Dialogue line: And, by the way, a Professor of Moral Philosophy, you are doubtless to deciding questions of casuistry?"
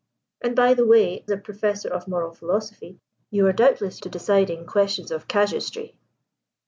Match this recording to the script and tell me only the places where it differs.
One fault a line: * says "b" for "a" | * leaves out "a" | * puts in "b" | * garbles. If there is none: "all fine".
all fine